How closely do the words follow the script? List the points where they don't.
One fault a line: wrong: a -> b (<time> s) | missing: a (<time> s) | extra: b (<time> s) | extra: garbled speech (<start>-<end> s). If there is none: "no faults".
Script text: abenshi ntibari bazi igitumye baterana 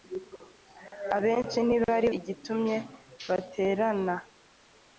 missing: bazi (2.1 s)